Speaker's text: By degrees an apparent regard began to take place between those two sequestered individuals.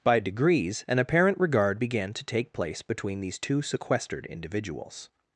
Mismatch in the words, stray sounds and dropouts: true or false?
true